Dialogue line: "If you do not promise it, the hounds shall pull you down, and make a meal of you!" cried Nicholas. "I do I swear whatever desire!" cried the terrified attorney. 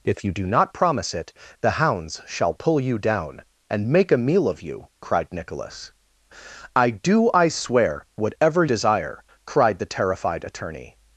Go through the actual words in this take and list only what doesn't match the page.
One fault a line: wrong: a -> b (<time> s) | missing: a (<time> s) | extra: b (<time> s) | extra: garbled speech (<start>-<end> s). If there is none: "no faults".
no faults